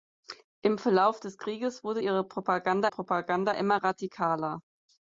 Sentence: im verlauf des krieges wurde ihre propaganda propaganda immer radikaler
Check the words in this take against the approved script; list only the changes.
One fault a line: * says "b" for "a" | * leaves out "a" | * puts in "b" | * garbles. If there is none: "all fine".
all fine